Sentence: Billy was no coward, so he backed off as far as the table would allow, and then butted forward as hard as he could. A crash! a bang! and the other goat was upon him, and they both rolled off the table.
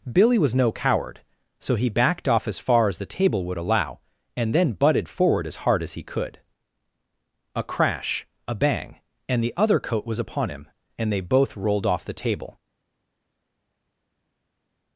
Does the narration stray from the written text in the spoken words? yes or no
yes